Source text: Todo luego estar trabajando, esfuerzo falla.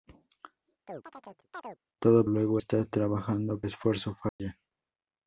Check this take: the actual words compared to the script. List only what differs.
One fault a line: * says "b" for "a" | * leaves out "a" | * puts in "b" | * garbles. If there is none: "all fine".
all fine